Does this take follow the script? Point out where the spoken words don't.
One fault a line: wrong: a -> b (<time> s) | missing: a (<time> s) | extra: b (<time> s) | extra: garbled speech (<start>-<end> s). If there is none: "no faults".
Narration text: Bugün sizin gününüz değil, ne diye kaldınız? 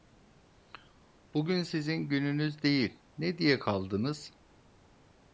no faults